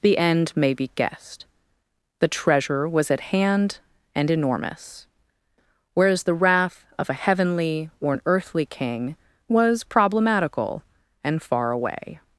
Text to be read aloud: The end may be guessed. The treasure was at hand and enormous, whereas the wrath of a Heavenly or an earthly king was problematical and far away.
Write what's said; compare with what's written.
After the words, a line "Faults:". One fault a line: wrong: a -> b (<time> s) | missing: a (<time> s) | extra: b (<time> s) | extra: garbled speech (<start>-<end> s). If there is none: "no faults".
The end may be guessed. The treasure was at hand and enormous, whereas the wrath of a Heavenly or an earthly king was problematical and far away.
Faults:
no faults